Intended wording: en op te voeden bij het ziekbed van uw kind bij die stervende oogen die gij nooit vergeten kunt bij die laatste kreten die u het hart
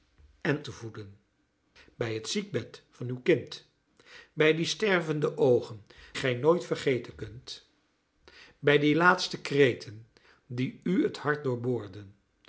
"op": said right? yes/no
no